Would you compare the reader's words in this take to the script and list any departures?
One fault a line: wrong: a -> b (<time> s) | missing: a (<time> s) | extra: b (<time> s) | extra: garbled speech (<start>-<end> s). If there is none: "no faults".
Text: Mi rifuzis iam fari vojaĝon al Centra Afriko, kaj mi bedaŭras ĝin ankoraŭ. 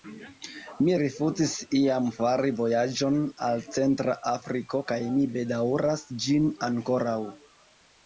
no faults